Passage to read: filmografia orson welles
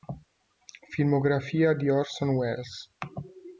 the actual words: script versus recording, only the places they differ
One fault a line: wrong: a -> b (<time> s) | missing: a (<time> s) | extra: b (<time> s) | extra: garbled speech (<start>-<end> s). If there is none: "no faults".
extra: di (1.8 s)